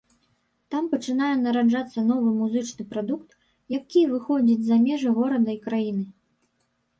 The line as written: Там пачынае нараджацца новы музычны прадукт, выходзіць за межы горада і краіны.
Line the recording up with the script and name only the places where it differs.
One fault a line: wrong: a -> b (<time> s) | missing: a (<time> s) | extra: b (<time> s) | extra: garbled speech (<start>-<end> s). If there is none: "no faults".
extra: які (3.8 s)